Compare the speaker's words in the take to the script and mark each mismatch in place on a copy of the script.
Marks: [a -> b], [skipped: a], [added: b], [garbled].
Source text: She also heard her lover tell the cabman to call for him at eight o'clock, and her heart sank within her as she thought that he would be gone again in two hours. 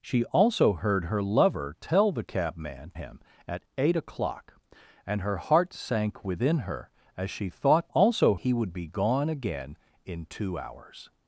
She also heard her lover tell the cabman [skipped: to call for] him at eight o'clock, and her heart sank within her as she thought [that -> also] he would be gone again in two hours.